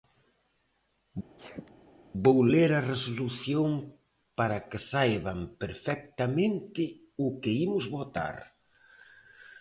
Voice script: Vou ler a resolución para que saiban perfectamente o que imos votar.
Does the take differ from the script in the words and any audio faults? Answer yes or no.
yes